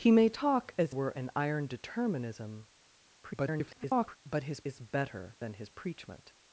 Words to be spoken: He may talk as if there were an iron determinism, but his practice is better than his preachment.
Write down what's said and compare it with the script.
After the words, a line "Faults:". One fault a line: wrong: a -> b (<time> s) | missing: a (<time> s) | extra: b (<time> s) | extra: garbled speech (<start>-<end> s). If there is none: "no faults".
He may talk as were an iron determinism, [garbled] but his is better than his preachment.
Faults:
missing: if there (1.0 s)
extra: garbled speech (3.2-4.2 s)
missing: practice (4.6 s)